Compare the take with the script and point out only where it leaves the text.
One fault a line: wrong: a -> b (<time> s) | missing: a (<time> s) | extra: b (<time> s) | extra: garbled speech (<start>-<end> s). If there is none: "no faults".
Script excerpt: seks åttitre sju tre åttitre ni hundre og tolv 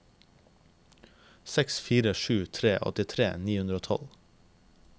wrong: åttitre -> fire (1.9 s)